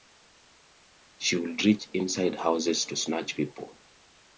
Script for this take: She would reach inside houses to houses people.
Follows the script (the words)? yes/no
no